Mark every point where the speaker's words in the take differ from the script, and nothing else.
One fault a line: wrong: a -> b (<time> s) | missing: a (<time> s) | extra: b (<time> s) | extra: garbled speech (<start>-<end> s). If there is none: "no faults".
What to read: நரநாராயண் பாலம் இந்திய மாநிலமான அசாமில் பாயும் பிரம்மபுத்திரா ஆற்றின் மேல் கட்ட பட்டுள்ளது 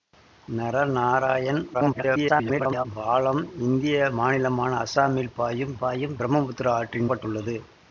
extra: garbled speech (1.7-2.9 s)
extra: பாயும் (5.8 s)
missing: மேல் கட்ட (7.1 s)